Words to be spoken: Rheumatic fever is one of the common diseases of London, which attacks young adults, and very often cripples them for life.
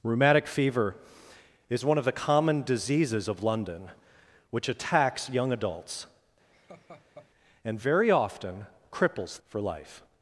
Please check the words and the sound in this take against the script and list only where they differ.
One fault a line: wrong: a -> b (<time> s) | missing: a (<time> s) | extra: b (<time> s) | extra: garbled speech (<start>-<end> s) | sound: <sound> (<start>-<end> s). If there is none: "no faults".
sound: laugh (6.5-7.3 s)
missing: them (9.4 s)